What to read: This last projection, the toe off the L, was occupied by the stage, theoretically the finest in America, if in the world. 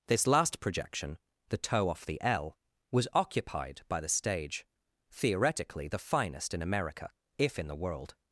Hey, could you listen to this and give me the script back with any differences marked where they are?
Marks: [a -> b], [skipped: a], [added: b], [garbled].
This last projection, the toe off the L, was occupied by the stage, theoretically the finest in America, if in the world.